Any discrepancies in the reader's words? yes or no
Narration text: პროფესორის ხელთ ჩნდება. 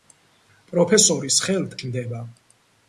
no